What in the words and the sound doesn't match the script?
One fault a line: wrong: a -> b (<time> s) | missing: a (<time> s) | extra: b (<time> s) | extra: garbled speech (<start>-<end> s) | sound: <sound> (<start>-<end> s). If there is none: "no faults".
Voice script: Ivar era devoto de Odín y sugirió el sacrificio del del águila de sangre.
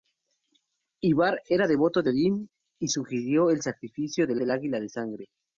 no faults